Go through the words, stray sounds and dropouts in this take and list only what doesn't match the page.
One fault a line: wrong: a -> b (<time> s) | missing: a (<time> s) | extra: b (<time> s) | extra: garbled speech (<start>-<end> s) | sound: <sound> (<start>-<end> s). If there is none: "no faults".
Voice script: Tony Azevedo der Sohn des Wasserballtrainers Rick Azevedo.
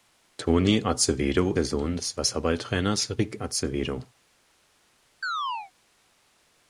sound: chirp (5.2-5.7 s)